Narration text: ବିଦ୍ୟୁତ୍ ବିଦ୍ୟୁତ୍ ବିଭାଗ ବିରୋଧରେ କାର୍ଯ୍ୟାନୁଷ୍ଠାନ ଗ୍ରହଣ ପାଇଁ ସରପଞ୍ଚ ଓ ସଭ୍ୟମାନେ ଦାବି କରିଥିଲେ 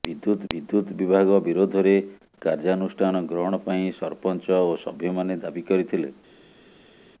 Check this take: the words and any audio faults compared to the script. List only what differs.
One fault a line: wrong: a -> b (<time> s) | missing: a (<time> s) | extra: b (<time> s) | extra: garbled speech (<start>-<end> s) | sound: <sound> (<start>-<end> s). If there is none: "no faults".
no faults